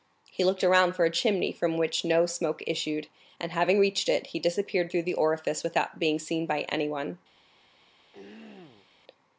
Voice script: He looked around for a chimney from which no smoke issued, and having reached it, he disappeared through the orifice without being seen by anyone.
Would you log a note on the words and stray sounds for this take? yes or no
yes